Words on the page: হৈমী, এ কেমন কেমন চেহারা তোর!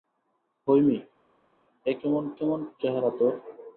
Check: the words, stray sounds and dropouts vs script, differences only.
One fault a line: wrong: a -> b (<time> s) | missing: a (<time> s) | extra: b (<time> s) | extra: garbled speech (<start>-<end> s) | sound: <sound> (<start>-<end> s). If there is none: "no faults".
no faults